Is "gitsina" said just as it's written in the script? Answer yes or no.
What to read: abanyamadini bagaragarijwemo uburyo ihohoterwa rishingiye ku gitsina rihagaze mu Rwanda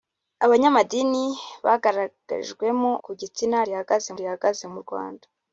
yes